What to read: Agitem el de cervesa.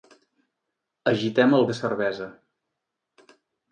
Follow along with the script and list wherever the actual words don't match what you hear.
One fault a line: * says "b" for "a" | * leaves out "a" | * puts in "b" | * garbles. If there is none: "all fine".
all fine